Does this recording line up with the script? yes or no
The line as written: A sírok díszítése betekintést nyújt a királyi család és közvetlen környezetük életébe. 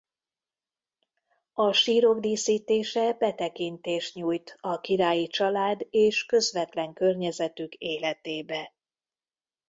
yes